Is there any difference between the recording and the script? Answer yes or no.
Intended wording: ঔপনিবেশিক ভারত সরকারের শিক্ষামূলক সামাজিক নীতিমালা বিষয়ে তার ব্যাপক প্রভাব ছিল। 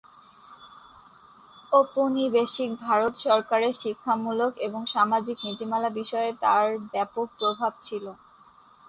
yes